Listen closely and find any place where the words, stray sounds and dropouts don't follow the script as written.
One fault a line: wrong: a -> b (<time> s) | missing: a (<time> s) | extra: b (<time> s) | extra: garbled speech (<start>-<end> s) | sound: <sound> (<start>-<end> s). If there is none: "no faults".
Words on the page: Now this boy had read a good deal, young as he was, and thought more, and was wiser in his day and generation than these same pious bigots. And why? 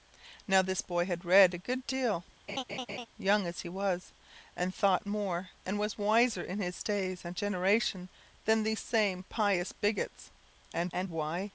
sound: laugh (2.5-3.1 s)
extra: and (10.9 s)